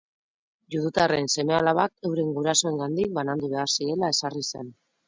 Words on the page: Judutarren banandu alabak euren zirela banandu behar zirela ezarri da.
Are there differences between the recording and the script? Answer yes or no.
yes